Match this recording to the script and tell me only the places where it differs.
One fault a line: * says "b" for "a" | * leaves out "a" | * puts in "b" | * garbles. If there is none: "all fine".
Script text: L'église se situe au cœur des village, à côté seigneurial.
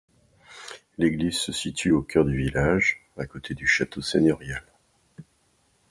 * says "du" for "des"
* puts in "du château"